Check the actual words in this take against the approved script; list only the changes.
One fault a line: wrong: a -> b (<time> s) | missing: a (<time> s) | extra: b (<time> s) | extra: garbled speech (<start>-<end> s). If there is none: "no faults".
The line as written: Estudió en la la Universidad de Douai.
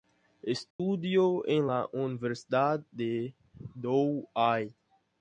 missing: la (1.9 s)